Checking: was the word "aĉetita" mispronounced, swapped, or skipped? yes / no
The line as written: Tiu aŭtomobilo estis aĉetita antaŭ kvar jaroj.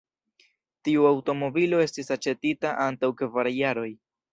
no